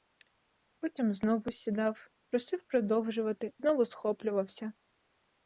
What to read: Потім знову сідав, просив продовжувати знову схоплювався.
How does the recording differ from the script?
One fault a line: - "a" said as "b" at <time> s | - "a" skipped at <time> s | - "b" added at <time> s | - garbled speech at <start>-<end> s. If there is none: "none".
none